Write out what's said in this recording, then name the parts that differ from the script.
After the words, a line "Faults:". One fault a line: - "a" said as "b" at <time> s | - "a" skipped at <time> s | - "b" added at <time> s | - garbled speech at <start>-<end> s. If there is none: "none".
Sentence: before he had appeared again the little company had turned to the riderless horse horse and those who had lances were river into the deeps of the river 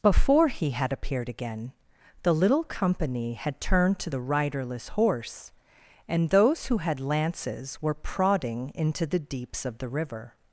before he had appeared again the little company had turned to the riderless horse and those who had lances were prodding into the deeps of the river
Faults:
- "horse" skipped at 5.5 s
- "river" said as "prodding" at 7.9 s